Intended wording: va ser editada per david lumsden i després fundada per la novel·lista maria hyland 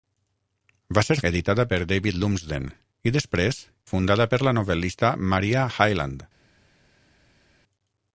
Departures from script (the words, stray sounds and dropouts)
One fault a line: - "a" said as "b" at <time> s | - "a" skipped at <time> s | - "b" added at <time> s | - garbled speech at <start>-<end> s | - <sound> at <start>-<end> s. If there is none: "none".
none